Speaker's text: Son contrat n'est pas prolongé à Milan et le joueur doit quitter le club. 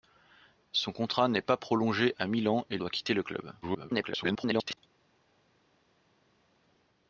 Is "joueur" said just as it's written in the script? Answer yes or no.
no